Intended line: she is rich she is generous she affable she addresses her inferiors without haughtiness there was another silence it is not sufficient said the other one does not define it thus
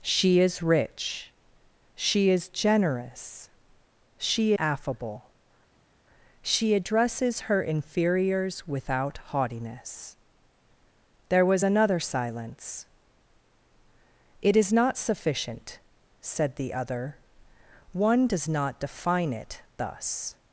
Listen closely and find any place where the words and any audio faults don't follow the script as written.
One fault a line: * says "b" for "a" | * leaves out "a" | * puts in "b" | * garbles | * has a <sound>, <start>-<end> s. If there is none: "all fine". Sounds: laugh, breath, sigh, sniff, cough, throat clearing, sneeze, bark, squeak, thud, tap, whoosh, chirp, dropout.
all fine